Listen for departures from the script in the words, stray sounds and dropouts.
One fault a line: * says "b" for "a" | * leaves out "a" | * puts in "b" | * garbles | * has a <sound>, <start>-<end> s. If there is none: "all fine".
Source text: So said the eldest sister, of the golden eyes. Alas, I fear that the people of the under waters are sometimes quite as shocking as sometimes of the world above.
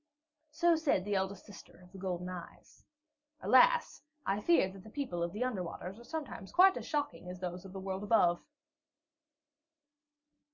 * says "those" for "sometimes"